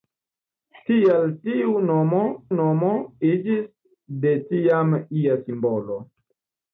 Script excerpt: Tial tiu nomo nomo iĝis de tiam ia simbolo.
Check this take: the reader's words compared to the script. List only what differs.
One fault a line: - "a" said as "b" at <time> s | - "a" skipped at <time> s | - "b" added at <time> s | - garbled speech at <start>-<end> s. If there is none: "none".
none